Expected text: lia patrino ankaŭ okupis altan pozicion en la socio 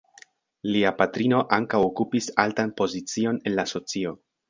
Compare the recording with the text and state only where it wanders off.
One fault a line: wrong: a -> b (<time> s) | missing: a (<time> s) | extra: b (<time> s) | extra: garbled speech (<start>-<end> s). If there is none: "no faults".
no faults